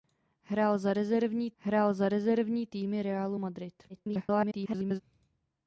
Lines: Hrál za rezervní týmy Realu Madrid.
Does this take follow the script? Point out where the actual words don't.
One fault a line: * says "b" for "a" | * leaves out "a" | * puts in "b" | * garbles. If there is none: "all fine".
* puts in "hrál za rezervní"
* garbles